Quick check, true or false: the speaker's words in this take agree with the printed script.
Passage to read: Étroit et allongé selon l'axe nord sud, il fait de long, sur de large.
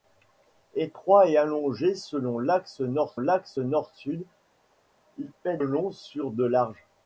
false